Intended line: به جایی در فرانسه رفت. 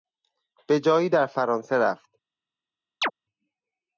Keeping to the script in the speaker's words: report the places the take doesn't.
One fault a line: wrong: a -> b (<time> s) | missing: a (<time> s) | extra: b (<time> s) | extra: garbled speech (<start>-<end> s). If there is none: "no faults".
no faults